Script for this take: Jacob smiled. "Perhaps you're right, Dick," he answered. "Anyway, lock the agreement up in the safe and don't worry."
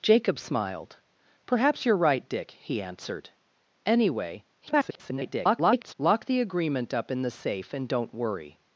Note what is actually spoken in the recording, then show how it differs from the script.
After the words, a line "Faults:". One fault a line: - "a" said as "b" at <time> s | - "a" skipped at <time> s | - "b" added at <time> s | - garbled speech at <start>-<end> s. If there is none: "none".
Jacob smiled. "Perhaps you're right, Dick," he answered. "Anyway, [garbled] lock the agreement up in the safe and don't worry."
Faults:
- garbled speech at 4.6-5.9 s